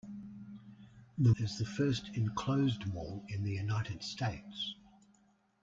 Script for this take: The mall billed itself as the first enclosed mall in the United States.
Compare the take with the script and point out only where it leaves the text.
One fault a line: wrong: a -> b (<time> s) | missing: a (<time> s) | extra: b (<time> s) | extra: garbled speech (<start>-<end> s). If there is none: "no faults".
missing: mall billed itself (1.3 s)